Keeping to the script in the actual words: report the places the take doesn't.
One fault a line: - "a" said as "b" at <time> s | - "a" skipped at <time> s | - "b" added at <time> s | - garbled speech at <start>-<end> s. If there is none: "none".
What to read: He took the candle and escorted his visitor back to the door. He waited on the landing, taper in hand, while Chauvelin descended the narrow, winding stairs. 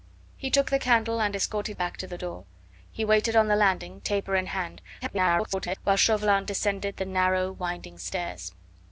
- "his visitor" skipped at 1.8 s
- garbled speech at 5.0-5.8 s